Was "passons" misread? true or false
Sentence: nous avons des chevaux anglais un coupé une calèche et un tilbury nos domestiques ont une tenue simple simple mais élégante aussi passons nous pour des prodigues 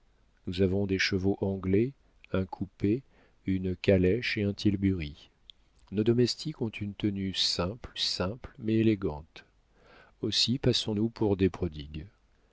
false